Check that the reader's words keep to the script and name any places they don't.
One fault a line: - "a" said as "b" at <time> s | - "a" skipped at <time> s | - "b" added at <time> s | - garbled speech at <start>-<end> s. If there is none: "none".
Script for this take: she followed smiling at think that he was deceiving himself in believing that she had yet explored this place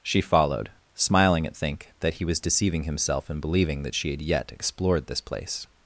none